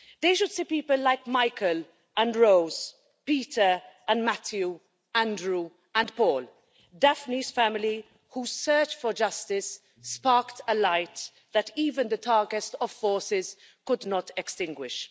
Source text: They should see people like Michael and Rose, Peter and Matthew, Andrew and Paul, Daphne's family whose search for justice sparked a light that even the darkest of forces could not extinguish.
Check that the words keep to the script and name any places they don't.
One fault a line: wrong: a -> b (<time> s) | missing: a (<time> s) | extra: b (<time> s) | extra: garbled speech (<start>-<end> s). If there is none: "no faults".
no faults